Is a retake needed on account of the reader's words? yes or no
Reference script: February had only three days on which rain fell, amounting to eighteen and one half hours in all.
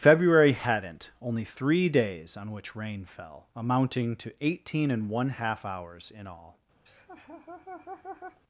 yes